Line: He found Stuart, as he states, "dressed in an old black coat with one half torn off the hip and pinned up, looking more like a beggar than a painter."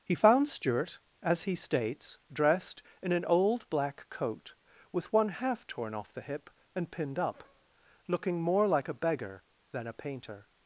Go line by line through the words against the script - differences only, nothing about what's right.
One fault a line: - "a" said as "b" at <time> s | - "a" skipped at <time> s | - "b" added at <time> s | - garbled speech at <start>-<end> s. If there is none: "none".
none